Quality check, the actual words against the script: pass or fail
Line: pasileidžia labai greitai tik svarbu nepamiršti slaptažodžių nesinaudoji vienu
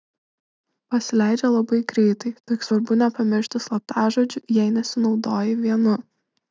fail